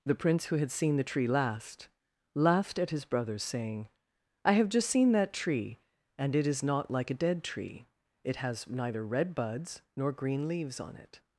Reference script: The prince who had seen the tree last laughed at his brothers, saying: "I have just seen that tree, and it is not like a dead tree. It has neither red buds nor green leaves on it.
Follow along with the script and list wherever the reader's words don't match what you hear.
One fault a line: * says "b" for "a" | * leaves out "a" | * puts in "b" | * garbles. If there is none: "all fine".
all fine